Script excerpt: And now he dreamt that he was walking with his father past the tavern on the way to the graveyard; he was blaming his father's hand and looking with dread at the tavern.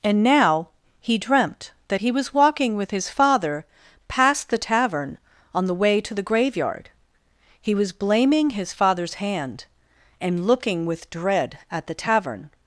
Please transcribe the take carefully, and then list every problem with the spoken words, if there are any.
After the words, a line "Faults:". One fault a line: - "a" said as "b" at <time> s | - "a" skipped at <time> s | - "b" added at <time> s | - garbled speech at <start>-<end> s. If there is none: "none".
And now he dreamt that he was walking with his father past the tavern on the way to the graveyard; he was blaming his father's hand and looking with dread at the tavern.
Faults:
none